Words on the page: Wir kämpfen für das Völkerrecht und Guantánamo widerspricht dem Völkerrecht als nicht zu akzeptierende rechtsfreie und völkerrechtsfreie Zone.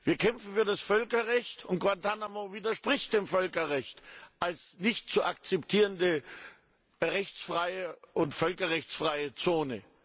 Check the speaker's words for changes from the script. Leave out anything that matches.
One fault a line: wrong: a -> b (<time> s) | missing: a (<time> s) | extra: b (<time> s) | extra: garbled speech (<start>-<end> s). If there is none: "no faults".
no faults